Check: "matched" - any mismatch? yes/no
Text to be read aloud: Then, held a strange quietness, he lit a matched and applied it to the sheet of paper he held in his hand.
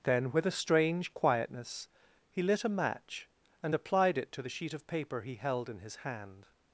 yes